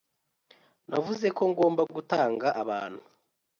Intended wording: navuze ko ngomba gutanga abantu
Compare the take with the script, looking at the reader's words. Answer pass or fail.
pass